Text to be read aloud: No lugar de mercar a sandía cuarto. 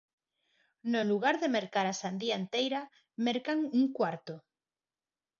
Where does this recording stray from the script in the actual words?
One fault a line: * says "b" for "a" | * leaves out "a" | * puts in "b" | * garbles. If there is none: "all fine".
* puts in "enteira mercan un"